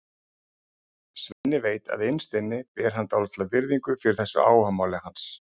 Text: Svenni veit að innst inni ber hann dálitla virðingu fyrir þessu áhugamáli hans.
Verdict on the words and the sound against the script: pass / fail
fail